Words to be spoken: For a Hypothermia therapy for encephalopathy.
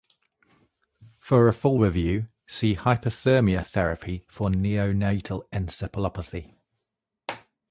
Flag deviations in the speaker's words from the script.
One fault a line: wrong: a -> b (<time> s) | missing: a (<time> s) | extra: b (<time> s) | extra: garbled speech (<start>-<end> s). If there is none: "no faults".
extra: full review see (1.5 s)
extra: neonatal (4.5 s)